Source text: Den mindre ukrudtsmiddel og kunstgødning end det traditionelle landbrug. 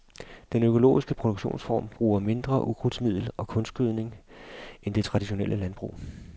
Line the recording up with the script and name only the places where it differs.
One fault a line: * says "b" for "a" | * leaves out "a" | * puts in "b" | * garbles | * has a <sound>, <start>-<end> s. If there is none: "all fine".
* puts in "økologiske produktionsform bruger"